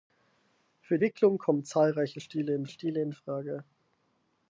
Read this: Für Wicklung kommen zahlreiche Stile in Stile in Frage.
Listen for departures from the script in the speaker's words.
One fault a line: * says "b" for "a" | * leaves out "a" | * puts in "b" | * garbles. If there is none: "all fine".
all fine